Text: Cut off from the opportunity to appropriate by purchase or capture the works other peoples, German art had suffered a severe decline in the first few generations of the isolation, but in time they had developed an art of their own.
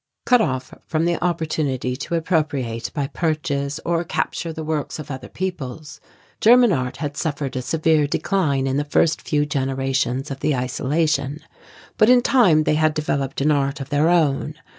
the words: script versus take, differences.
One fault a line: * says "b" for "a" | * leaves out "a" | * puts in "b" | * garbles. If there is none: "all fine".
* puts in "of"